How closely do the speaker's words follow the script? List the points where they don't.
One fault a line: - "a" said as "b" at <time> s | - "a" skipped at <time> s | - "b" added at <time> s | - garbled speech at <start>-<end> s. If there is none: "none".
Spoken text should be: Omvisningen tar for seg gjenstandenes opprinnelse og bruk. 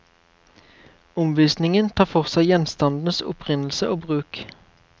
none